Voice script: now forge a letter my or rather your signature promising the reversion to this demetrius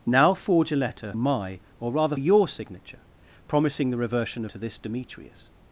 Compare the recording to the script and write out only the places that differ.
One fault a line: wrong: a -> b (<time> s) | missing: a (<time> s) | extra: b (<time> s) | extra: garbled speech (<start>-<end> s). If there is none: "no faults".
no faults